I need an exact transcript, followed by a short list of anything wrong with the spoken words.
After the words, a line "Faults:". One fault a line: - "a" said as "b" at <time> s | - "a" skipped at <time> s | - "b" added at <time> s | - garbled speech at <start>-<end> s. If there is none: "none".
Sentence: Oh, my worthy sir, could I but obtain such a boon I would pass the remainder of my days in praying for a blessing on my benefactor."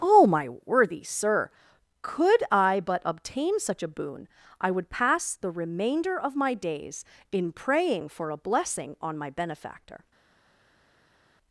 Oh, my worthy sir, could I but obtain such a boon I would pass the remainder of my days in praying for a blessing on my benefactor."
Faults:
none